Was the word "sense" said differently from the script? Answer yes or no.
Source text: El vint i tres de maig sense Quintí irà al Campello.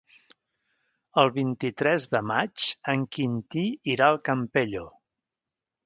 yes